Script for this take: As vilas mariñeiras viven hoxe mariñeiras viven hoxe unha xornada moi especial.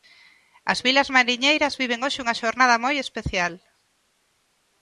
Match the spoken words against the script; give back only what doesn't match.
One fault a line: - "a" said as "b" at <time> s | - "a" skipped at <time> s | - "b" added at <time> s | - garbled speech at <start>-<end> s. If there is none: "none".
- "mariñeiras viven hoxe" skipped at 2.2 s